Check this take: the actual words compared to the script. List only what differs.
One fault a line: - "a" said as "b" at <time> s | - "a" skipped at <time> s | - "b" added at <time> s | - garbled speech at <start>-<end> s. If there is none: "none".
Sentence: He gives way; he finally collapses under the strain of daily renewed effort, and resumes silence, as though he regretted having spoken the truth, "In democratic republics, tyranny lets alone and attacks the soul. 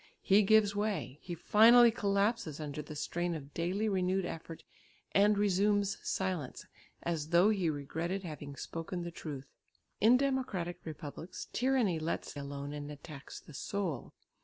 none